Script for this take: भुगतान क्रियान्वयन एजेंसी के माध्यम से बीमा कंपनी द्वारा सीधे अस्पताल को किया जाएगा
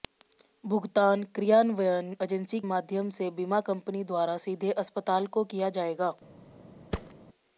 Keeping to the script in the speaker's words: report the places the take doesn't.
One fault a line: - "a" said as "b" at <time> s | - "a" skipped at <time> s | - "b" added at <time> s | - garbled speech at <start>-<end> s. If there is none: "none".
- "के" skipped at 2.6 s